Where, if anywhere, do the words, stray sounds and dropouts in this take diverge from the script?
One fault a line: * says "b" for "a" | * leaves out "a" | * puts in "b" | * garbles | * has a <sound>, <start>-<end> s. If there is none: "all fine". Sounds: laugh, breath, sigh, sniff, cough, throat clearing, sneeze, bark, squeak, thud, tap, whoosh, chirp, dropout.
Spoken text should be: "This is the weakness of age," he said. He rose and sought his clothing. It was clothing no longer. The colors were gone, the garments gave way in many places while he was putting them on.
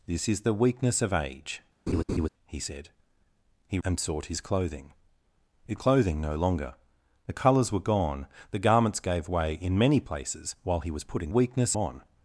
* has a laugh, 1.9-2.3 s
* leaves out "rose"
* leaves out "was"
* says "weakness" for "them"